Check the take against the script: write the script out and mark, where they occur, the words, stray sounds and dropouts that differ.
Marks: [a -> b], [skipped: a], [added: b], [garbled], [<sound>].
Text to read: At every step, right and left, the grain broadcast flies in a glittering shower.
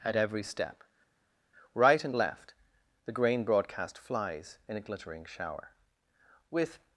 At every step, right and left, the grain broadcast flies in a glittering shower. [added: With]